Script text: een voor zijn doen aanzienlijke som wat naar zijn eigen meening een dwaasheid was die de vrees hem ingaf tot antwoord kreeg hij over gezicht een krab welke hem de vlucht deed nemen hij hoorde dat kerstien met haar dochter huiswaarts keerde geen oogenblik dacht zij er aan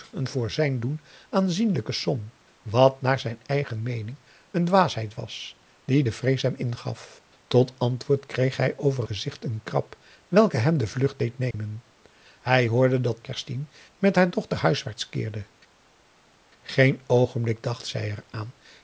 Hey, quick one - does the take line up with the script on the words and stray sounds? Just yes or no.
no